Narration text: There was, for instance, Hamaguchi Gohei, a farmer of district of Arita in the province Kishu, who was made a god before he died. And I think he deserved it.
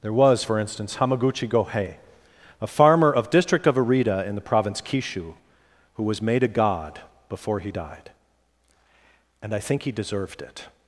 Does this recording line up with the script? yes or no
yes